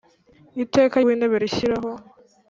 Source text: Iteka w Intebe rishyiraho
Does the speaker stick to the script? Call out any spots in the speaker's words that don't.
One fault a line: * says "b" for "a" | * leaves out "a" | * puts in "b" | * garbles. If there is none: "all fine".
all fine